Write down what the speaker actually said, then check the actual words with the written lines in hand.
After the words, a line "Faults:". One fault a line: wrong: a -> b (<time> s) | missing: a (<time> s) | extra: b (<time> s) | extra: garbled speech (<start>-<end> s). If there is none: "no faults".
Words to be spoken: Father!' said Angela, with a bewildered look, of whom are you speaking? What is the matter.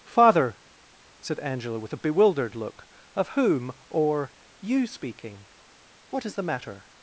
Father!' said Angela, with a bewildered look, of whom or you speaking? What is the matter.
Faults:
wrong: are -> or (3.9 s)